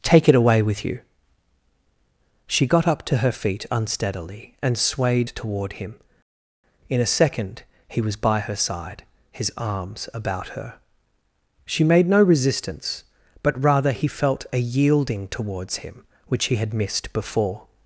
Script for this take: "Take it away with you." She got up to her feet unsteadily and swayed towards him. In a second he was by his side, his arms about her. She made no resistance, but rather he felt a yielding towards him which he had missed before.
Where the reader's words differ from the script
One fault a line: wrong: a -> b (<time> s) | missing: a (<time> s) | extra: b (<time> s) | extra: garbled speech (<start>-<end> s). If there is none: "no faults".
wrong: towards -> toward (5.3 s)
wrong: his -> her (8.4 s)